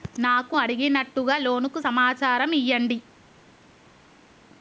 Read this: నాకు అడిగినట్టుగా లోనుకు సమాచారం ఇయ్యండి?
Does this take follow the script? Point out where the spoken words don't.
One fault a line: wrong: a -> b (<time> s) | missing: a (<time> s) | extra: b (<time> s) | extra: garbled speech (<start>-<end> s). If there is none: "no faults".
no faults